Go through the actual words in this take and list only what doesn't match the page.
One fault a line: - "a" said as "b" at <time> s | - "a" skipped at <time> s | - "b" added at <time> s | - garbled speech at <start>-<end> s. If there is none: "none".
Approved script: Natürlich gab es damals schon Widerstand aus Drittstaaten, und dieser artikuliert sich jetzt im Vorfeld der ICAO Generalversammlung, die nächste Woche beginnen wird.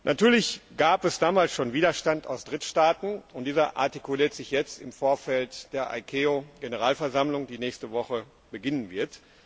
none